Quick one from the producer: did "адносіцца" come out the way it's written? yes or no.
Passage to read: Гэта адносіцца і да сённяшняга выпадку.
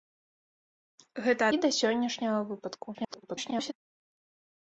no